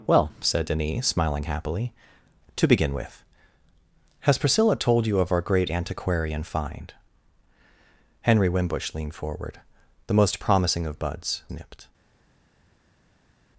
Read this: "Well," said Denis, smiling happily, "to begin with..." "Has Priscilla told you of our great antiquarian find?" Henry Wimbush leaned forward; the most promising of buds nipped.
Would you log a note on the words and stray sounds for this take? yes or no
no